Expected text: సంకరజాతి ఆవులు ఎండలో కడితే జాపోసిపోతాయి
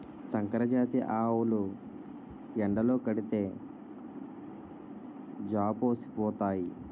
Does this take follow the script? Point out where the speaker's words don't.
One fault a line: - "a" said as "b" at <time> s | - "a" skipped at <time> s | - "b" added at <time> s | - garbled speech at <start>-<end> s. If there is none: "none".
none